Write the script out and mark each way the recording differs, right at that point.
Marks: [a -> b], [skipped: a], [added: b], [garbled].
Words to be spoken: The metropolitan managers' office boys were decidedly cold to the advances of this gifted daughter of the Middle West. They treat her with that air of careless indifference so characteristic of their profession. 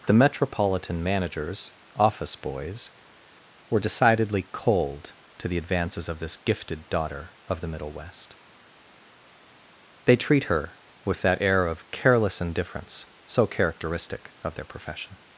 The metropolitan managers' office boys were decidedly cold to the advances of this gifted daughter of the Middle West. They treat her with that air of careless indifference so characteristic of their profession.